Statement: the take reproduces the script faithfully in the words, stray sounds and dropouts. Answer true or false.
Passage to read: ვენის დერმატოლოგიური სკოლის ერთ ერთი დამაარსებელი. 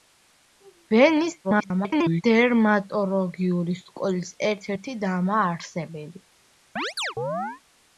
false